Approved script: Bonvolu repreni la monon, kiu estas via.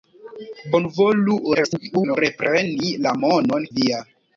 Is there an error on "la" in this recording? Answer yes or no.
no